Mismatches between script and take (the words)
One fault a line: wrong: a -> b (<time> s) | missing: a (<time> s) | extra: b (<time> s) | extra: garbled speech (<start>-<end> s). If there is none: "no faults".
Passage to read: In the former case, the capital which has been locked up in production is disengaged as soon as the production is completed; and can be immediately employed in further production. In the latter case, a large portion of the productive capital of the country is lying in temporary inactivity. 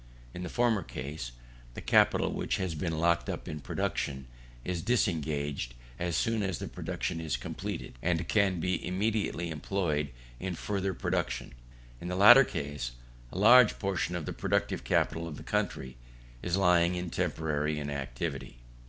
no faults